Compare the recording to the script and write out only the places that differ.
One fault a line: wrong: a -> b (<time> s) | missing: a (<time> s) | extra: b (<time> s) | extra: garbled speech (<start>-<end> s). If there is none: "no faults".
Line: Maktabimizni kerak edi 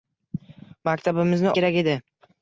no faults